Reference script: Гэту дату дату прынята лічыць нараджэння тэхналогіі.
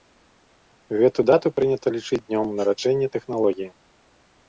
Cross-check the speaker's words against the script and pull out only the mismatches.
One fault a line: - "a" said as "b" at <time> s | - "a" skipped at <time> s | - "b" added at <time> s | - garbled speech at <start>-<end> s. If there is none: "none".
- "дату" skipped at 1.5 s
- "днём" added at 2.3 s